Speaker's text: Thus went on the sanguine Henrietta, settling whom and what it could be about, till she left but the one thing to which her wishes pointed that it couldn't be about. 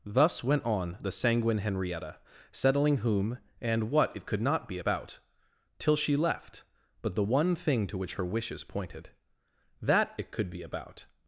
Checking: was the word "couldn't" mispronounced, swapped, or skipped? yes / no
yes